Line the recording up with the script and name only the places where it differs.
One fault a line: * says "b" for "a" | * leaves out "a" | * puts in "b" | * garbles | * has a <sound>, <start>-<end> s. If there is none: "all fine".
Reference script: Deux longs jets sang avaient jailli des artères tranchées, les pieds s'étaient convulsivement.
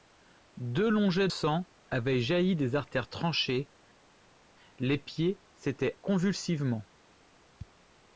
all fine